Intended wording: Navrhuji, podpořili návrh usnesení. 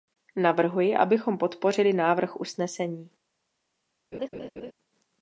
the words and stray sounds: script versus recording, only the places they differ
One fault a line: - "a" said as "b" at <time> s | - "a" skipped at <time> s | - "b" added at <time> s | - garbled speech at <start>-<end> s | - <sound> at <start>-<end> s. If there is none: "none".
- "abychom" added at 0.9 s
- laugh at 4.1-4.7 s